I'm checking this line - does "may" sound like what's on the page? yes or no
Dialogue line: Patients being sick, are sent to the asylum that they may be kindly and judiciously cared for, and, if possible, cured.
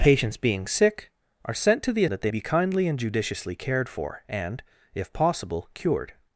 no